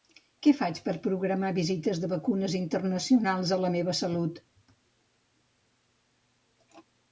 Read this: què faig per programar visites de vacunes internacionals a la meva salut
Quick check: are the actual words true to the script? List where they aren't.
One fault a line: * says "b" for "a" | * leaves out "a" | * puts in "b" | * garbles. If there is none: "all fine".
all fine